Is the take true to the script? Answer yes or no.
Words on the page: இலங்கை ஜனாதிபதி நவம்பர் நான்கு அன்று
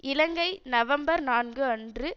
no